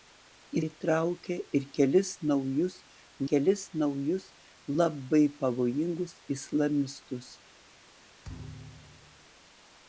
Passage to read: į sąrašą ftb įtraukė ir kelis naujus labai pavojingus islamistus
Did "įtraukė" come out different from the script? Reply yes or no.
yes